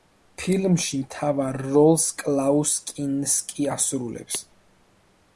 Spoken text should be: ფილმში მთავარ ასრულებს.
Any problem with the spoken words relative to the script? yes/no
yes